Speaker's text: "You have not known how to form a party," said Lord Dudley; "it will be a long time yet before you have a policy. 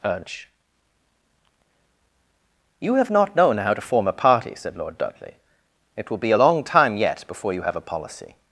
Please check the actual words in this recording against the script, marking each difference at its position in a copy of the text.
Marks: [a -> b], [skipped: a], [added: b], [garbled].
[added: urge] "You have not known how to form a party," said Lord Dudley; "it will be a long time yet before you have a policy.